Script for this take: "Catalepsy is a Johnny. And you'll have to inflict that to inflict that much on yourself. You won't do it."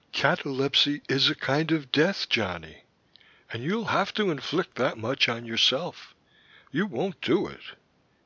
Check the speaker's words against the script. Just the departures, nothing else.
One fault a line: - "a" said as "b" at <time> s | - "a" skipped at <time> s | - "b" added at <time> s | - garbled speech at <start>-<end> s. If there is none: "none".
- "kind of death" added at 1.4 s
- "to inflict that" skipped at 5.0 s